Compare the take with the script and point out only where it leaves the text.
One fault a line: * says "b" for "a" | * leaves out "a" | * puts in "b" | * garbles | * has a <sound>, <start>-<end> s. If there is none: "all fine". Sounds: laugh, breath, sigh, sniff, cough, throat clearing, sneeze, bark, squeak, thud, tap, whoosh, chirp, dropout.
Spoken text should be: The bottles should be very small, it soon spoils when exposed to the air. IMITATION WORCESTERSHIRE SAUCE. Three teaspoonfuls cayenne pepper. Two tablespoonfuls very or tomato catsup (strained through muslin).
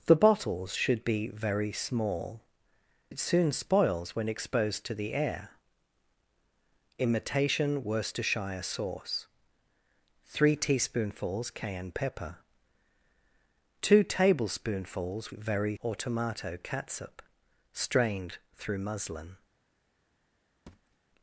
* has a thud, 20.7-21.0 s